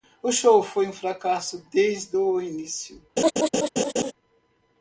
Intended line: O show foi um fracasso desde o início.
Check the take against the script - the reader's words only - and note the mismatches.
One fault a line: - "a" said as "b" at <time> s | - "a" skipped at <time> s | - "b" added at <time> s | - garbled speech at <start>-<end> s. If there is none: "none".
none